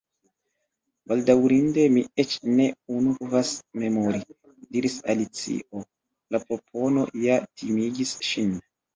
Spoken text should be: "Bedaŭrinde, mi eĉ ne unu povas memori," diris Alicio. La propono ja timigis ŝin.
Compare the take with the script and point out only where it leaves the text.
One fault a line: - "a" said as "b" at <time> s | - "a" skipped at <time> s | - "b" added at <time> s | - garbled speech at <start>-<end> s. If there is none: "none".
none